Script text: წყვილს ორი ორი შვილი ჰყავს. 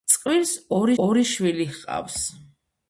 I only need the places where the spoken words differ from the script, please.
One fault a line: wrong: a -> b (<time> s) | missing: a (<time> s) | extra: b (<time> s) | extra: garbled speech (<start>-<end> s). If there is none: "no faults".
no faults